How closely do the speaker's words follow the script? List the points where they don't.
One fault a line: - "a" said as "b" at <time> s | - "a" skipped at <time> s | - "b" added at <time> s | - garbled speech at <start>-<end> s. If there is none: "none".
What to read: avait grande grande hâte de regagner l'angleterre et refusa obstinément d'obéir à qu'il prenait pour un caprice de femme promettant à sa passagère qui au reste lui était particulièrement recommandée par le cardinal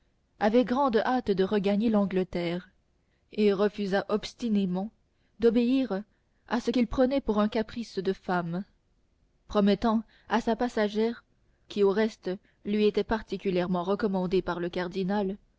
- "grande" skipped at 1.0 s
- "ce" added at 6.6 s